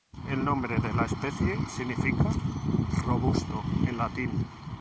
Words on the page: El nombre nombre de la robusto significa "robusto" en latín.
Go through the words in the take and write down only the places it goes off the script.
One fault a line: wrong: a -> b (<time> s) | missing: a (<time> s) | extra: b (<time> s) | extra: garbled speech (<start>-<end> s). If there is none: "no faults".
missing: nombre (0.8 s)
wrong: robusto -> especie (1.1 s)